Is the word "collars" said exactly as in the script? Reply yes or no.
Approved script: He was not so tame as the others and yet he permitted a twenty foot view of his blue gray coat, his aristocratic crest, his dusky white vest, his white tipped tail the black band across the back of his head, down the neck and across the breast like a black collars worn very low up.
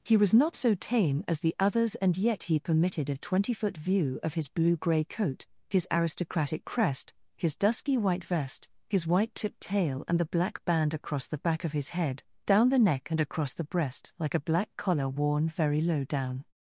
no